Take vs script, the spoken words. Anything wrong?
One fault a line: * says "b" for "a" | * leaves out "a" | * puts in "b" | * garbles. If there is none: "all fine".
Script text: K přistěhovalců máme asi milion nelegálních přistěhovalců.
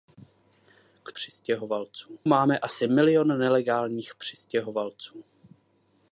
all fine